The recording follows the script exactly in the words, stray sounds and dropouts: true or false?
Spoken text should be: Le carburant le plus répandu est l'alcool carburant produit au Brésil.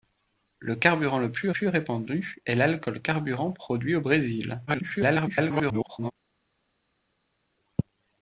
false